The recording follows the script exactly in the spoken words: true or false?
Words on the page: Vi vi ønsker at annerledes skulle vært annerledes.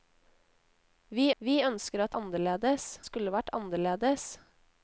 true